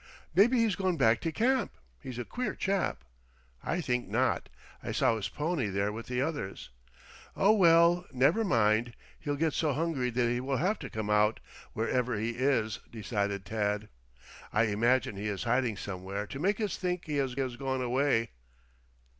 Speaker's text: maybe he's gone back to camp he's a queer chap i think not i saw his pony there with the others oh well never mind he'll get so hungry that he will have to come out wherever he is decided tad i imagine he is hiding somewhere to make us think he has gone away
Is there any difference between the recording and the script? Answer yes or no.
yes